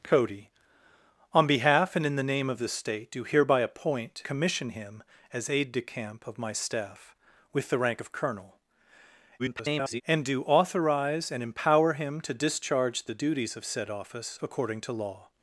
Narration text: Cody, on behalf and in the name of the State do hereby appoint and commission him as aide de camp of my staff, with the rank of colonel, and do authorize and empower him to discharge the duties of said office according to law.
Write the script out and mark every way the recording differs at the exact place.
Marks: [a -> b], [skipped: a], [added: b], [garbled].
Cody, on behalf and in the name of the State do hereby appoint [skipped: and] commission him as aide de camp of my staff, with the rank of colonel, [garbled] and do authorize and empower him to discharge the duties of said office according to law.